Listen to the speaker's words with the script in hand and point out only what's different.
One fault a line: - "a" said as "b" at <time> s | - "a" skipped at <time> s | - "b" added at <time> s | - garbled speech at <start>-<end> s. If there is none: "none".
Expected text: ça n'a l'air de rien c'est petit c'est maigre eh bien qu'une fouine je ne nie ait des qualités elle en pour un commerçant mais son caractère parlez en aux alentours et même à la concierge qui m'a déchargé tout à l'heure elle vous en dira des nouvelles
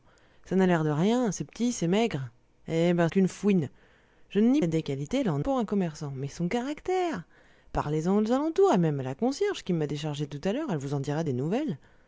none